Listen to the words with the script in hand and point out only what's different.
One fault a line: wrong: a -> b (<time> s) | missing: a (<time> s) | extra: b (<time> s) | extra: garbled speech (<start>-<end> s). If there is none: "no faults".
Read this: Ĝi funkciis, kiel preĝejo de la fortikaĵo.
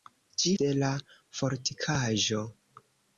missing: funkciis kiel preĝejo (0.5 s)